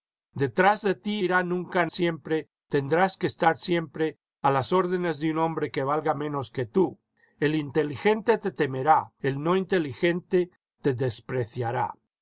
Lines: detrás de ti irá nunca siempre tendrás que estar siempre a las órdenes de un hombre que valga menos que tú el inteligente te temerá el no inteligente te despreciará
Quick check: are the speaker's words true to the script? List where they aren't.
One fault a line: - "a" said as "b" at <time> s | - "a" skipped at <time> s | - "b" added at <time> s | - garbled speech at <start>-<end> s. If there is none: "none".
none